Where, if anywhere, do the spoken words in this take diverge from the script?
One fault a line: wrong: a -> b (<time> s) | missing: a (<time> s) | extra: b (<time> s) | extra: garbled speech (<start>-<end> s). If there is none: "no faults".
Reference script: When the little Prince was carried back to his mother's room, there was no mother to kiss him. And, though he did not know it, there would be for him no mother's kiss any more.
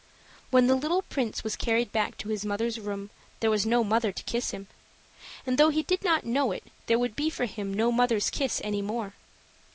no faults